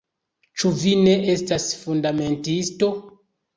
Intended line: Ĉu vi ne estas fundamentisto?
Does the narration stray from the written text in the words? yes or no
no